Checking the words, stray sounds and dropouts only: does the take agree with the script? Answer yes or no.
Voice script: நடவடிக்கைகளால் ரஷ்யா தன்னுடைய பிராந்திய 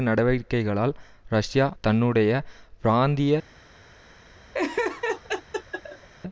no